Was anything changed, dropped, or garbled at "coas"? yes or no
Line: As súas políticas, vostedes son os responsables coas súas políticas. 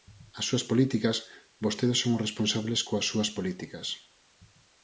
no